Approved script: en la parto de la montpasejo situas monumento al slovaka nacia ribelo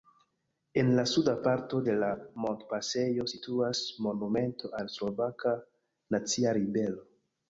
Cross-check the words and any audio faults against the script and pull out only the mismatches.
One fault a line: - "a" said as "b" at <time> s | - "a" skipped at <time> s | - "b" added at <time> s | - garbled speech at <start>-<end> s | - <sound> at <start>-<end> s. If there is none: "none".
- "suda" added at 1.1 s